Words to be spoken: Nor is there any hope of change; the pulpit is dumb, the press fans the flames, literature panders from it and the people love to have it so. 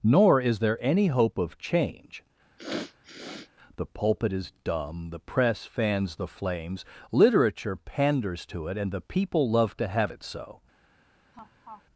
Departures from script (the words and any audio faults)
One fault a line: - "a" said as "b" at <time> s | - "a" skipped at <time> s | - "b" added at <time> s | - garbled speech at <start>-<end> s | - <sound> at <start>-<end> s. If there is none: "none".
- sniff at 2.6-3.5 s
- "from" said as "to" at 8.5 s
- laugh at 11.3-11.8 s